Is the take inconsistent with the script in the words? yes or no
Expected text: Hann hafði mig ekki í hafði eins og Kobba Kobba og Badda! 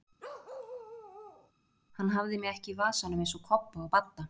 yes